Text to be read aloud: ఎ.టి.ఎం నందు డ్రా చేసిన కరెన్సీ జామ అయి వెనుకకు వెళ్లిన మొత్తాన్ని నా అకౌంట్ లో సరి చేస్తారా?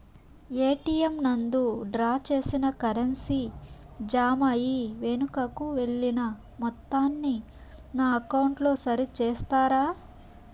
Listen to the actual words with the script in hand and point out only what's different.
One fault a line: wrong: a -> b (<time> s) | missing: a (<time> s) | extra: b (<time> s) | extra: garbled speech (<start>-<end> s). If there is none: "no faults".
no faults